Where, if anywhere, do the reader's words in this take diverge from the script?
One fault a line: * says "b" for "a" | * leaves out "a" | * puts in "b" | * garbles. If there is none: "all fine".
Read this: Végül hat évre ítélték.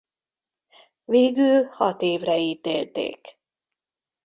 all fine